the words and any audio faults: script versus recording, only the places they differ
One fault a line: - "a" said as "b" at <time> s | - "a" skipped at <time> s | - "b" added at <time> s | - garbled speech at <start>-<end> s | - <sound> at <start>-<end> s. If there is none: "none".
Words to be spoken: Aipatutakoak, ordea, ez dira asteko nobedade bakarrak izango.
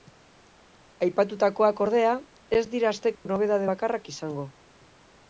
- dropout at 3.1-3.3 s